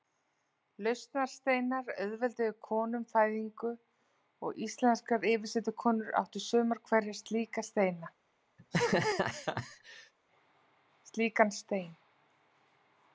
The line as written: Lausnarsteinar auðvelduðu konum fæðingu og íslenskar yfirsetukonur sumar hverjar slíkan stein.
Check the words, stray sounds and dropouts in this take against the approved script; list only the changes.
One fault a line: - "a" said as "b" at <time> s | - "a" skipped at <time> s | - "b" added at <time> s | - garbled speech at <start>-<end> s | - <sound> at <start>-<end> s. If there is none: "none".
- "áttu" added at 6.2 s
- laugh at 8.6-10.1 s